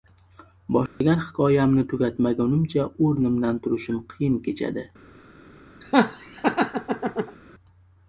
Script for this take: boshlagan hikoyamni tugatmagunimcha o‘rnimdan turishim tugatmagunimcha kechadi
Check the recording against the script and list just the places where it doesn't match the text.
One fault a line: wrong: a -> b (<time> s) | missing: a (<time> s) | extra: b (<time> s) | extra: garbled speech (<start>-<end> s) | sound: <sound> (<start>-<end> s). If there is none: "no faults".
sound: dropout (0.9-1.0 s)
wrong: tugatmagunimcha -> qiyin (4.2 s)
sound: laugh (5.8-7.4 s)